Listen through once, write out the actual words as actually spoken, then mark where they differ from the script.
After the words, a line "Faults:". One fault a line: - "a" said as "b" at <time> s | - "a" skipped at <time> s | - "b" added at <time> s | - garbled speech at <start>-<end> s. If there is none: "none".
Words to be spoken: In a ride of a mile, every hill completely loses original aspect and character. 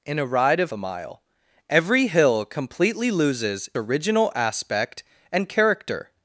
In a ride of a mile, every hill completely loses original aspect and character.
Faults:
none